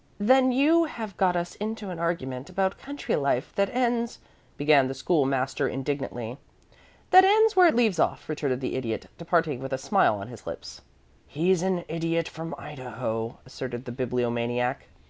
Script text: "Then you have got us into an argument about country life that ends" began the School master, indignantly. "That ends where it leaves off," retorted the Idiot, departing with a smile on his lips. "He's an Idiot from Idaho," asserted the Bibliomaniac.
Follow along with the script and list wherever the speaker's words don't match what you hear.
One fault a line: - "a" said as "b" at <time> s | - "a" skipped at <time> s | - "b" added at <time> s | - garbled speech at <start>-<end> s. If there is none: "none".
none